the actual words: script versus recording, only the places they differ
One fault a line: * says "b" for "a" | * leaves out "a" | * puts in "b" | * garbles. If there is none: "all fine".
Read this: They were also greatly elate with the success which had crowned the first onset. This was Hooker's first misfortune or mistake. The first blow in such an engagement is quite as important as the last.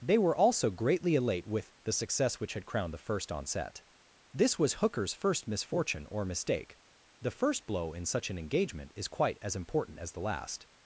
all fine